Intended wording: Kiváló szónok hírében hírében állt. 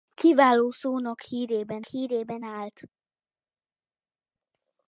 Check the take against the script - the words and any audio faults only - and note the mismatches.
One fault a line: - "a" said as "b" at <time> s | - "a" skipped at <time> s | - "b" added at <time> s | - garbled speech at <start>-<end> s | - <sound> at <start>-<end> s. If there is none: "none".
none